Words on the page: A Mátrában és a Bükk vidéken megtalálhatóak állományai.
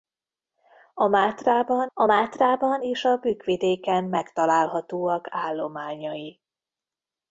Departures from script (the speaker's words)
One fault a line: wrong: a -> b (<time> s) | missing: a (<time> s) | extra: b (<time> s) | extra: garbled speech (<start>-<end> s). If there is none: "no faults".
extra: a Mátrában (1.9 s)